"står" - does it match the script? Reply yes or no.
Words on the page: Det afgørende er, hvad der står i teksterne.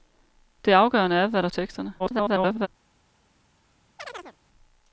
no